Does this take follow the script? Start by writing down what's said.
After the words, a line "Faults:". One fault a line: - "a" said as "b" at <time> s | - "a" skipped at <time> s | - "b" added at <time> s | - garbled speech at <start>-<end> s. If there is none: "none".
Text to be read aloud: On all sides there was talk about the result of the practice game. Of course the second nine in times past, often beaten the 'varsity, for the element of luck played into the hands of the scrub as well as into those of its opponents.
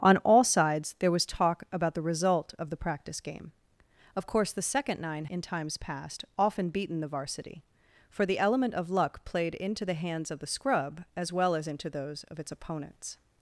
On all sides there was talk about the result of the practice game. Of course the second nine in times past, often beaten the 'varsity, for the element of luck played into the hands of the scrub as well as into those of its opponents.
Faults:
none